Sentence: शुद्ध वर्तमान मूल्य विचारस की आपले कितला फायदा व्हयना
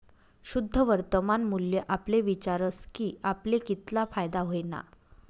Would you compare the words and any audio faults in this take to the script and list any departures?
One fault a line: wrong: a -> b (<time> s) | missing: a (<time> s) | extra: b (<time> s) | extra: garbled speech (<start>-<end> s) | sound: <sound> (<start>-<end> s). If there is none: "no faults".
extra: आपले (1.9 s)